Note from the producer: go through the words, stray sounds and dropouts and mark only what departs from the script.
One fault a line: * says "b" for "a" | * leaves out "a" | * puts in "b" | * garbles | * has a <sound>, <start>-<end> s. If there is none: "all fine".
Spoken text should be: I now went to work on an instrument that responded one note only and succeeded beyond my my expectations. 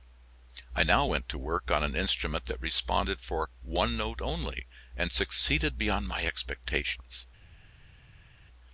* puts in "for"
* leaves out "my"